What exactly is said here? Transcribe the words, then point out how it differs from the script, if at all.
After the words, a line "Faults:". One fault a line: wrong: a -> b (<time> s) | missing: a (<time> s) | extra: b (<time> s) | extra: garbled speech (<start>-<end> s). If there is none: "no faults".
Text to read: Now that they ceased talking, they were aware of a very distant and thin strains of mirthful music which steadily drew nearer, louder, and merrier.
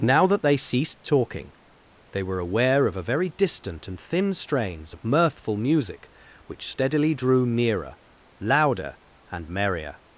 Now that they ceased talking, they were aware of a very distant and thin strains of mirthful music which steadily drew nearer, louder, and merrier.
Faults:
no faults